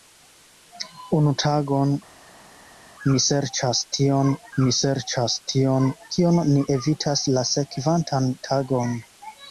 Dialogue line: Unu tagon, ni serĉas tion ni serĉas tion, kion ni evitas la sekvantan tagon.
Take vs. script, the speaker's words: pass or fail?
pass